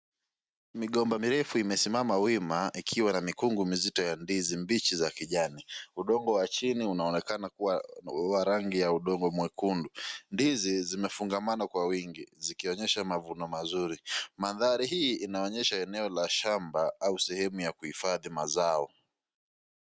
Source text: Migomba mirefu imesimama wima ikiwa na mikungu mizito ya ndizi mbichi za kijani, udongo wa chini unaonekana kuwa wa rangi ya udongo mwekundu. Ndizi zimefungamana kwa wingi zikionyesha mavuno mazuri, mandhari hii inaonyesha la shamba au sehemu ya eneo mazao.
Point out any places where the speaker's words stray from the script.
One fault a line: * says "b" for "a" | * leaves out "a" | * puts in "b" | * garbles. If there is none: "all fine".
* puts in "eneo"
* says "kuhifadhi" for "eneo"